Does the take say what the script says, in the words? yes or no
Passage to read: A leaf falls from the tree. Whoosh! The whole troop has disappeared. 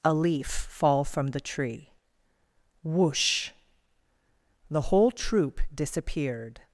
no